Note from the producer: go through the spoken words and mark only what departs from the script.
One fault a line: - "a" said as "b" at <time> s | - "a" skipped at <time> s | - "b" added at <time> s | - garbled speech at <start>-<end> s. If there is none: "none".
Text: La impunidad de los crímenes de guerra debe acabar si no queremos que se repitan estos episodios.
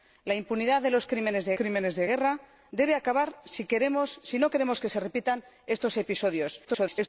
- "crímenes de" added at 1.5 s
- garbled speech at 6.6-7.1 s